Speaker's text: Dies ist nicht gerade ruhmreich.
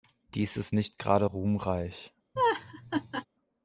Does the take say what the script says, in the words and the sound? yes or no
no